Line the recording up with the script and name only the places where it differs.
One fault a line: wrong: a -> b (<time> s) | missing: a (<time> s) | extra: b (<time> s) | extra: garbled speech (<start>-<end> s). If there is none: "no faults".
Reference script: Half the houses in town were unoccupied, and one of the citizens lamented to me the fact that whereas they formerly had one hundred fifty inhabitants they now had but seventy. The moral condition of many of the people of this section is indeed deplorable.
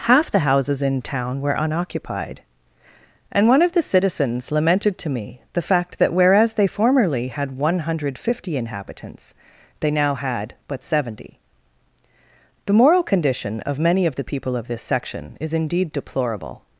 no faults